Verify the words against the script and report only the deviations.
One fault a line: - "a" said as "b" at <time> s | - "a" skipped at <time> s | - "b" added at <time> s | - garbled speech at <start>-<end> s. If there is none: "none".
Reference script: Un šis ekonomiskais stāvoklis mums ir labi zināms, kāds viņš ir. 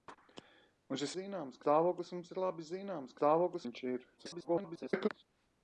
- "ekonomiskais" said as "zināms" at 1.2 s
- "kāds" said as "stāvoklis" at 3.2 s
- garbled speech at 4.2-5.1 s